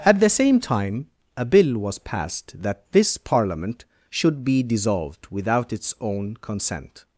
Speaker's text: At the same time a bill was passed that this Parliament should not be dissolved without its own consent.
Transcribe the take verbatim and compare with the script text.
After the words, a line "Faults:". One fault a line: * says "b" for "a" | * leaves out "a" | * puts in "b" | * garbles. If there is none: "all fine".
At the same time a bill was passed that this Parliament should be dissolved without its own consent.
Faults:
* leaves out "not"